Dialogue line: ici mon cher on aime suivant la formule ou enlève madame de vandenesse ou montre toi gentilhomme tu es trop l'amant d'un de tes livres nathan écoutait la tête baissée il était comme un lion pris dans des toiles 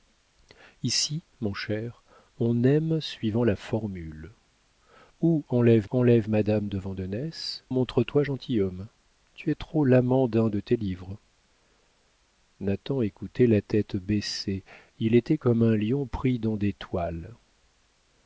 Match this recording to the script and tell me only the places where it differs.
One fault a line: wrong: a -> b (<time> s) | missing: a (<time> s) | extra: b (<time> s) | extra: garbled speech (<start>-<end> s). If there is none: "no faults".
extra: enlève (5.9 s)
missing: ou (7.7 s)